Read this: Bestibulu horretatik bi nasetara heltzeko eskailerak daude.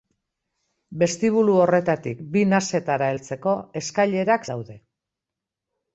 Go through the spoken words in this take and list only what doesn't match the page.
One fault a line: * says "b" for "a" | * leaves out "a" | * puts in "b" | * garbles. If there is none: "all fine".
all fine